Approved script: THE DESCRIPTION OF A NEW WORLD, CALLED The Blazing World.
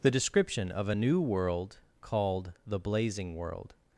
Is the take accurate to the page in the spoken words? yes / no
yes